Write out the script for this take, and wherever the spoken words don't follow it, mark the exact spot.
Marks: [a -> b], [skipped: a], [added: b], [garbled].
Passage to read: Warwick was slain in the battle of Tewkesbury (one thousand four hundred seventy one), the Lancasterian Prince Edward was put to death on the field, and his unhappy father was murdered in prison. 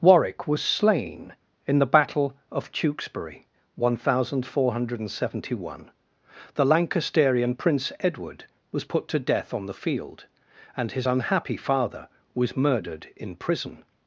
Warwick was slain in the battle of Tewkesbury (one thousand four hundred seventy one), the Lancasterian Prince Edward was put to death on the field, and his unhappy father was murdered in prison.